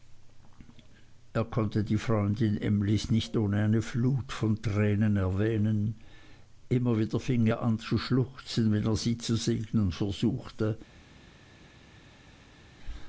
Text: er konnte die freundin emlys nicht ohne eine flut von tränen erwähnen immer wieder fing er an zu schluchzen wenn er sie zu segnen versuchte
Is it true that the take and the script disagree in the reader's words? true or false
false